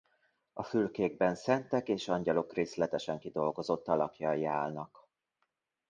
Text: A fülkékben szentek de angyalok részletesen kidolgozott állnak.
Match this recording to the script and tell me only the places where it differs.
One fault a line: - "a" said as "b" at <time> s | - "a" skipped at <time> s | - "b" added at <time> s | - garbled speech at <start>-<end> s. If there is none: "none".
- "de" said as "és" at 1.9 s
- "alakjai" added at 3.9 s